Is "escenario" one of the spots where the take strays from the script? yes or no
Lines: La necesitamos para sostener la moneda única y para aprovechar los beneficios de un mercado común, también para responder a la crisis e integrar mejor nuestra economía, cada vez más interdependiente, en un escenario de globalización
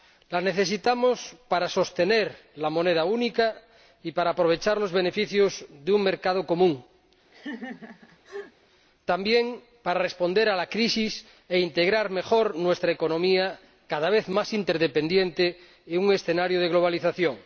no